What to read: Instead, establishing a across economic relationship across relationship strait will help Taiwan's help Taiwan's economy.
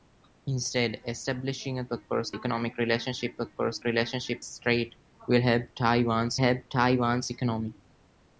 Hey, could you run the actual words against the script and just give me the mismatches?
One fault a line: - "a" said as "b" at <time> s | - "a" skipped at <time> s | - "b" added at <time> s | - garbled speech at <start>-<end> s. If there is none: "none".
none